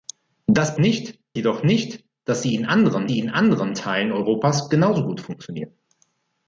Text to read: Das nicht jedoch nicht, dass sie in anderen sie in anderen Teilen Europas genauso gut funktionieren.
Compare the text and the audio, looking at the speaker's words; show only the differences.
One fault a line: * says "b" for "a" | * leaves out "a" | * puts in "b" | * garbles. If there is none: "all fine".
all fine